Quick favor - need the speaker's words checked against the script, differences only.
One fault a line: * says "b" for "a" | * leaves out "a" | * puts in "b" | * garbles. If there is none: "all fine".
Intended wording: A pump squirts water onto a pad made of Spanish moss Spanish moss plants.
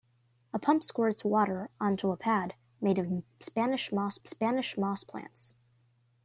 all fine